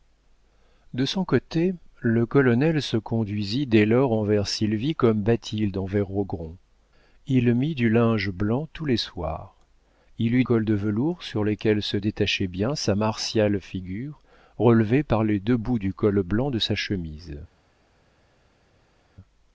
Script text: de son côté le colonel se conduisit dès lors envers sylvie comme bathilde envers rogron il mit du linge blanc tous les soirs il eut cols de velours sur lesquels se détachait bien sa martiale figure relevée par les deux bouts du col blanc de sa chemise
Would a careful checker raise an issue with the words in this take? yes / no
no